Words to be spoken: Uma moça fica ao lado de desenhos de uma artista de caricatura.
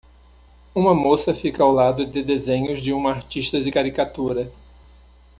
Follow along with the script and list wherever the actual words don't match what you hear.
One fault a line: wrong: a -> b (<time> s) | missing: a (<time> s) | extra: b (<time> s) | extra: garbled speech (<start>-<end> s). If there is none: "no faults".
no faults